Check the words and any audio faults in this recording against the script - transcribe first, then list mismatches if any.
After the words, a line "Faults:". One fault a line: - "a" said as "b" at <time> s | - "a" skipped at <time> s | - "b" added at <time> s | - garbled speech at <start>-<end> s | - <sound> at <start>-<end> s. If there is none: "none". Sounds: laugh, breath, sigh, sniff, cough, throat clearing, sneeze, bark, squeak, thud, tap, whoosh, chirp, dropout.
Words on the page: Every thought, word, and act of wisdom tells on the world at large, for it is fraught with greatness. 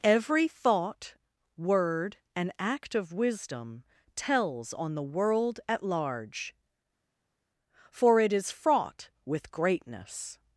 Every thought, word, and act of wisdom tells on the world at large, for it is fraught with greatness.
Faults:
none